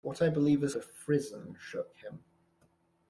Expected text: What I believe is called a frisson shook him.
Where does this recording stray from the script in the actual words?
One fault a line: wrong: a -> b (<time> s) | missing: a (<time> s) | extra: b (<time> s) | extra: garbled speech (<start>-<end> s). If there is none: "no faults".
missing: called (0.7 s)